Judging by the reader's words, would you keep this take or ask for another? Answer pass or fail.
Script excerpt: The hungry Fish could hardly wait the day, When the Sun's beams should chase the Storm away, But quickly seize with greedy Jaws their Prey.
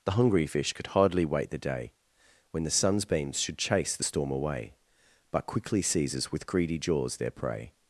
fail